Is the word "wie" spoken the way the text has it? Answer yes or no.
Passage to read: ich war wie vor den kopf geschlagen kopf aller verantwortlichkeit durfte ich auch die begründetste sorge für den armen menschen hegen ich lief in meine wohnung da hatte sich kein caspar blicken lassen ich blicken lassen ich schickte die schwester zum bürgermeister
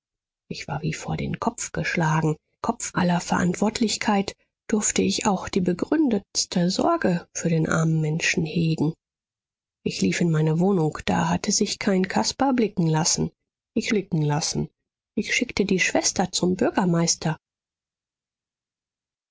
yes